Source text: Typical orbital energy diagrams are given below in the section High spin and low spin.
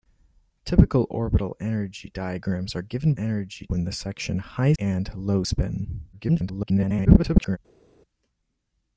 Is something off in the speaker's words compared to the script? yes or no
yes